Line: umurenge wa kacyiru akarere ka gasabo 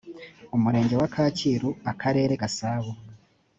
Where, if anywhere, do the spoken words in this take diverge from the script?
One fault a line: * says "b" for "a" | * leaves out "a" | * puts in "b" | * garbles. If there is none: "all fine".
* leaves out "ka"